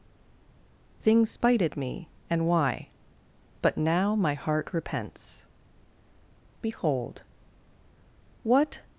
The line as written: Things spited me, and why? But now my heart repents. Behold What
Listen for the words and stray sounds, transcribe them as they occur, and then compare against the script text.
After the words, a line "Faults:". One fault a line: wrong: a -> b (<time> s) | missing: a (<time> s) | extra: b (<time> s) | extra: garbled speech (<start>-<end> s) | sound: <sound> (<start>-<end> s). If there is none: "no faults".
Things spited me, and why? But now my heart repents. Behold What
Faults:
no faults